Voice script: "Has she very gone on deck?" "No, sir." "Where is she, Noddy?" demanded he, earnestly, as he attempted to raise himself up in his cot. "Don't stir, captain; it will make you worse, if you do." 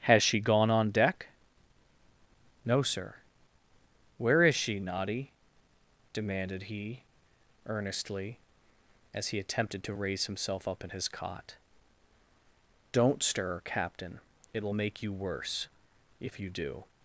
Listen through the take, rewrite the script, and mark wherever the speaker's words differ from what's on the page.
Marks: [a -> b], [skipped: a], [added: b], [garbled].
"Has she [skipped: very] gone on deck?" "No, sir." "Where is she, Noddy?" demanded he, earnestly, as he attempted to raise himself up in his cot. "Don't stir, captain; it will make you worse, if you do."